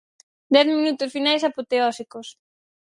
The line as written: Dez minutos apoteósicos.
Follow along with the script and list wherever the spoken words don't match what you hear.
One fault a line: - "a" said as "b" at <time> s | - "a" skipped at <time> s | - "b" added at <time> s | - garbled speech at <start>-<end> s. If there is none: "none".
- "finais" added at 1.1 s